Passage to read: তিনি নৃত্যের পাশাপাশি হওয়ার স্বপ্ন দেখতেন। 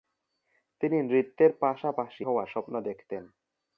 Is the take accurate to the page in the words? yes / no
yes